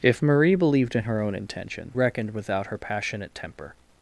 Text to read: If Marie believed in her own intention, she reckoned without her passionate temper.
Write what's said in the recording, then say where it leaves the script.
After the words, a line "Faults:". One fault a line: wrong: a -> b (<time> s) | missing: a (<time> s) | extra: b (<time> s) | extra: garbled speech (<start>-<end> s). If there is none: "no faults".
If Marie believed in her own intention, reckoned without her passionate temper.
Faults:
missing: she (1.9 s)